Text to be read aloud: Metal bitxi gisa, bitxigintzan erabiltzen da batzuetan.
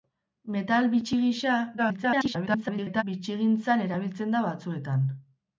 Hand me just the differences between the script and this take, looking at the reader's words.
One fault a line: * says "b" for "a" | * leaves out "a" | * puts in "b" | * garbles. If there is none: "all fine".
* garbles